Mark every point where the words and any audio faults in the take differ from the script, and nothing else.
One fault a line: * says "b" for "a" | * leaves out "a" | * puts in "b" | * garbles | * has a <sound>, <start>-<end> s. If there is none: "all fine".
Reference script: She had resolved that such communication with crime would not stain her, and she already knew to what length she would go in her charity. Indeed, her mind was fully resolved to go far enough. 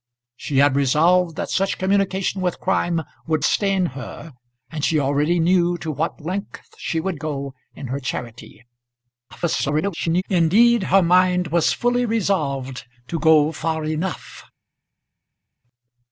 * leaves out "not"
* garbles